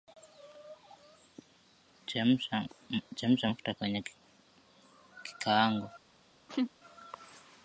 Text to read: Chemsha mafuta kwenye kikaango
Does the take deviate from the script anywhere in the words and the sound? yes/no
yes